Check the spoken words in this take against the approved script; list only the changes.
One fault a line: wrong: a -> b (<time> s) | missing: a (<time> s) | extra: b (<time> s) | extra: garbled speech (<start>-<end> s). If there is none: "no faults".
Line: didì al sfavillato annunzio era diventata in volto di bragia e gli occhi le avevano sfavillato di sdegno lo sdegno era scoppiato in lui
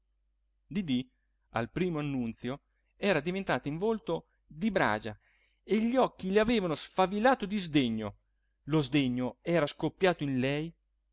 wrong: sfavillato -> primo (1.7 s)
wrong: lui -> lei (10.4 s)